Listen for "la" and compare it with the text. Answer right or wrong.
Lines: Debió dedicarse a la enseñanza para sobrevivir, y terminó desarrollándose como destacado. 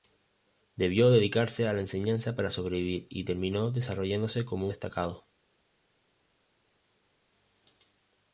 right